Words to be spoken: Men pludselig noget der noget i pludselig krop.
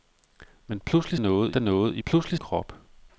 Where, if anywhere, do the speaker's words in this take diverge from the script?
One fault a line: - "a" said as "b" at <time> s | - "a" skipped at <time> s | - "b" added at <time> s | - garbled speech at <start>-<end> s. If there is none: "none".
none